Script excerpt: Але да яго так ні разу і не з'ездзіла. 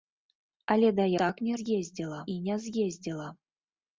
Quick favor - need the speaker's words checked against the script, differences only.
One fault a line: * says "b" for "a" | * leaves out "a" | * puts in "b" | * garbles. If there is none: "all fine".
* leaves out "яго"
* says "з'ездзіла" for "разу"